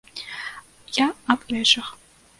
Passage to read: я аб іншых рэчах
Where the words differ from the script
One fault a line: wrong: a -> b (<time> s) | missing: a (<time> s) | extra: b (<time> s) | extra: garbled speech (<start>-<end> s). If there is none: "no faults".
missing: іншых (1.4 s)